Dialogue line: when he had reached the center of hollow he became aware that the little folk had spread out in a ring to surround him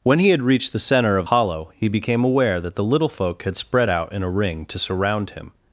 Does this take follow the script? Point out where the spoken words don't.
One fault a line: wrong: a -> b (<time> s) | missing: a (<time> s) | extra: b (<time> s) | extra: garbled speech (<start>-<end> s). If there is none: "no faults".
no faults